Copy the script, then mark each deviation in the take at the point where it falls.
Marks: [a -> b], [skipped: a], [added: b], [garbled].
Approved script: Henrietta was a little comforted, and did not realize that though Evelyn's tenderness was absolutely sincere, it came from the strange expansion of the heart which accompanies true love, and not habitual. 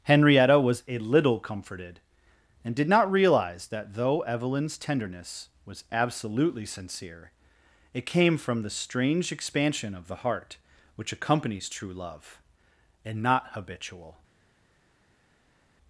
Henrietta was a little comforted, and did not realize that though Evelyn's tenderness was absolutely sincere, it came from the strange expansion of the heart which accompanies true love, and not habitual.